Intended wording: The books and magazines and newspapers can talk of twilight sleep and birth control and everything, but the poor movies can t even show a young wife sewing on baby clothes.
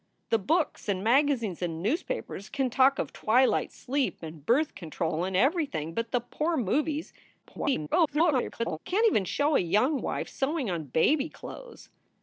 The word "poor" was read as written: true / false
true